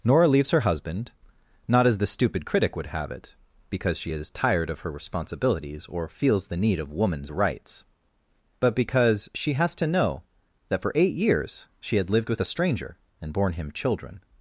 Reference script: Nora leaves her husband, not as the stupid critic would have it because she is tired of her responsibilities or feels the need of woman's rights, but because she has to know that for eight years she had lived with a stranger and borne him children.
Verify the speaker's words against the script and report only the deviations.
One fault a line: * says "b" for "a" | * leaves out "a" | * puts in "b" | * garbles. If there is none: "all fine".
all fine